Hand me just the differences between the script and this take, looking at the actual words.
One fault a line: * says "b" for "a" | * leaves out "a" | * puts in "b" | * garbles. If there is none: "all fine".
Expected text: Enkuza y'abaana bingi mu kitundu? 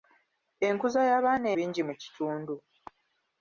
all fine